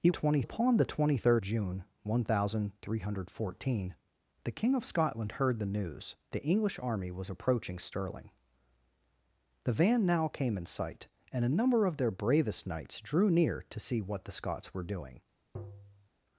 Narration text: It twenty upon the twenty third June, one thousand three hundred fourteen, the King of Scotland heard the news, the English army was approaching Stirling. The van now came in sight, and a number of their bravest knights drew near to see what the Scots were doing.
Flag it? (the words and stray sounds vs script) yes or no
yes